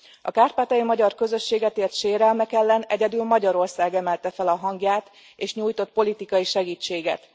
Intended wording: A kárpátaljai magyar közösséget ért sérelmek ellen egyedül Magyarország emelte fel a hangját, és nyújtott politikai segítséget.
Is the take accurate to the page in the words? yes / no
yes